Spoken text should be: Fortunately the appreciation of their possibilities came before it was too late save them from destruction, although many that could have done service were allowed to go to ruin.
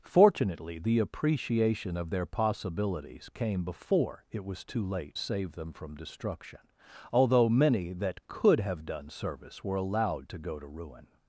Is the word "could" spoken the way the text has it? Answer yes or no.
yes